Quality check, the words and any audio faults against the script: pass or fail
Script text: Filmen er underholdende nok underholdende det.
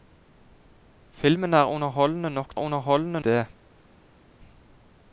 pass